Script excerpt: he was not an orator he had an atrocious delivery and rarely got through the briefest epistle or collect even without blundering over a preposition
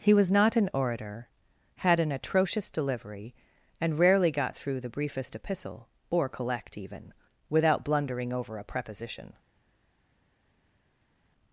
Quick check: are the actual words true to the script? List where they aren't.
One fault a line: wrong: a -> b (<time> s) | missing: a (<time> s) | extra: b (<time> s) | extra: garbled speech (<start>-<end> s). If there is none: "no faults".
missing: he (1.3 s)